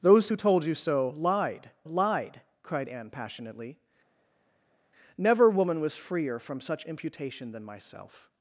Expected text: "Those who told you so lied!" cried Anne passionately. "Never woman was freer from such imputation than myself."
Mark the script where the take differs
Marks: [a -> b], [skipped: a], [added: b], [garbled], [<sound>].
"Those who told you so lied!" [added: lied] cried Anne passionately. "Never woman was freer from such imputation than myself."